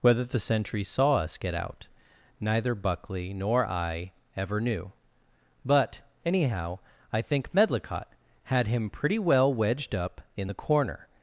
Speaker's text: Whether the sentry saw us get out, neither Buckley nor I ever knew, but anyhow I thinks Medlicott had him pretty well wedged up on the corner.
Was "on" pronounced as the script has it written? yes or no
no